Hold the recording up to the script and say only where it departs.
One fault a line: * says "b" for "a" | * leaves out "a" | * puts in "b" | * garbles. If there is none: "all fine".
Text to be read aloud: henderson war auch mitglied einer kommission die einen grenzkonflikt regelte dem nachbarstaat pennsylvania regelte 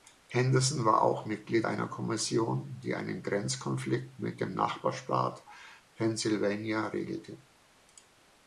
* says "mit" for "regelte"